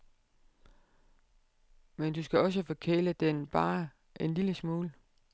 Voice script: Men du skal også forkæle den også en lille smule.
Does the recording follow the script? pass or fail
fail